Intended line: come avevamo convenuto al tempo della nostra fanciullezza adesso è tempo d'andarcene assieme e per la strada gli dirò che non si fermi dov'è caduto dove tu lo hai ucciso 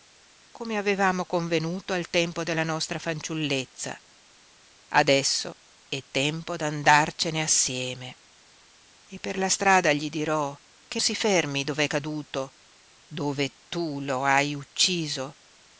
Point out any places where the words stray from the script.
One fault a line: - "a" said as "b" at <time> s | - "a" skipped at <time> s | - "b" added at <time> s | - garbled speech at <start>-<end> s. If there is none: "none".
- "non" skipped at 11.0 s